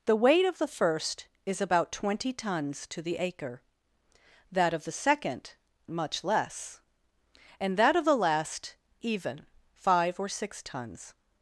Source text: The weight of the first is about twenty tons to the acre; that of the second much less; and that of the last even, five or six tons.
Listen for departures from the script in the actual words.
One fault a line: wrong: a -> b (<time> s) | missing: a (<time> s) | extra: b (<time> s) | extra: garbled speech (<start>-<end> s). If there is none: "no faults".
no faults